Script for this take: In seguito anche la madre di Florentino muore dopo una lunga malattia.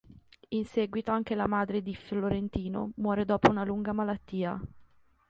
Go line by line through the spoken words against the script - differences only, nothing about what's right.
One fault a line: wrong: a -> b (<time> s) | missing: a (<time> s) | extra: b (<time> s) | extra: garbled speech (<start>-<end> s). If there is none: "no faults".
no faults